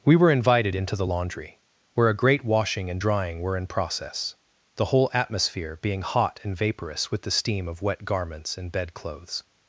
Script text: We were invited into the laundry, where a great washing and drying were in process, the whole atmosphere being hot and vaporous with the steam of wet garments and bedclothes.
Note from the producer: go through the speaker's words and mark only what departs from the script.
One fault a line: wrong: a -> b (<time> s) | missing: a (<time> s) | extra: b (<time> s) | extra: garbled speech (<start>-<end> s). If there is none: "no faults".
no faults